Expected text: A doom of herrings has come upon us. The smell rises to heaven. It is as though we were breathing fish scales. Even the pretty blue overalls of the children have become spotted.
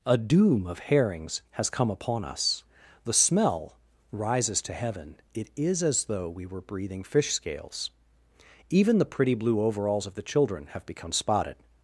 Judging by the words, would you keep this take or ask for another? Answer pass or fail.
pass